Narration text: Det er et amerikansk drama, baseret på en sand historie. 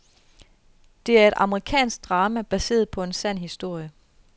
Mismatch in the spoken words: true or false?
false